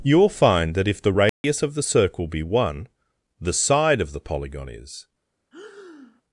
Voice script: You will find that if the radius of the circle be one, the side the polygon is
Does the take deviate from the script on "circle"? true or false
false